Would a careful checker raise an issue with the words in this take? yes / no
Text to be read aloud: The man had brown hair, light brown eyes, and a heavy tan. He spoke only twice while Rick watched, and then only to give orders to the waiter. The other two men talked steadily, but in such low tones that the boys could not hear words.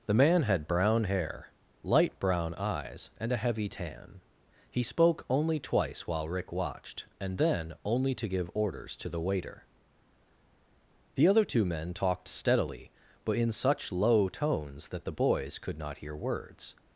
no